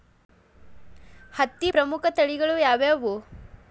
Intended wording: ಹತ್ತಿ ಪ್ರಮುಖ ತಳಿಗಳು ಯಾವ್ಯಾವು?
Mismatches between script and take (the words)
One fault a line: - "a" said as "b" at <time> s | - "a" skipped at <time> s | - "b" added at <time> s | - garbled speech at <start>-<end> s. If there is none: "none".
none